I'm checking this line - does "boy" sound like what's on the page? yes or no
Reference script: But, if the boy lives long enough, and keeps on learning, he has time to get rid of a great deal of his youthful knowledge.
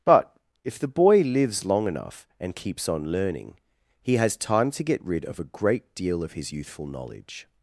yes